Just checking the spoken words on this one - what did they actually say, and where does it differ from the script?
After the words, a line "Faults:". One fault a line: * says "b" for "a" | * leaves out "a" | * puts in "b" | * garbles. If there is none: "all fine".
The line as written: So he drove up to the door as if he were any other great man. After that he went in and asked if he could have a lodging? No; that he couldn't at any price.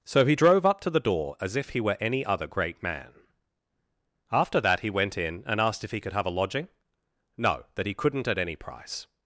So he drove up to the door as if he were any other great man. After that he went in and asked if he could have a lodging? No; that he couldn't at any price.
Faults:
all fine